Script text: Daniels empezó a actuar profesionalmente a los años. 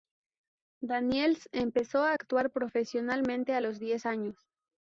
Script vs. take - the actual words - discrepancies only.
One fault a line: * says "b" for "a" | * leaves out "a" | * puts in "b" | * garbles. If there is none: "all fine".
* puts in "diez"